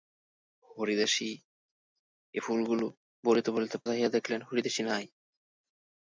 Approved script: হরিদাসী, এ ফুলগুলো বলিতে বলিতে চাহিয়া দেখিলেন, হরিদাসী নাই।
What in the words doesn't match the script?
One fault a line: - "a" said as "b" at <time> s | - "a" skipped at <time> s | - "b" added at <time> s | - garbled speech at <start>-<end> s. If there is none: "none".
none